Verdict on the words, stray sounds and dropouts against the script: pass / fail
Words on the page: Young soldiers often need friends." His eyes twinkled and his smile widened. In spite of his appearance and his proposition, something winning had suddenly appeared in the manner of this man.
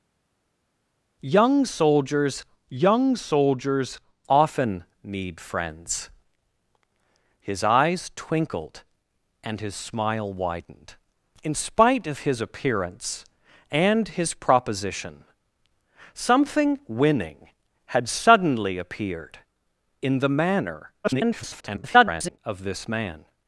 fail